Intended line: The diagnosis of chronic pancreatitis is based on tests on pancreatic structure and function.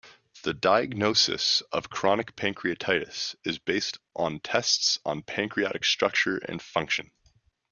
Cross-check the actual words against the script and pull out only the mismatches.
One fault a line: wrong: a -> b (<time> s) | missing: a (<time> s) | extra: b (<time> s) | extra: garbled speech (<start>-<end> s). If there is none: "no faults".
no faults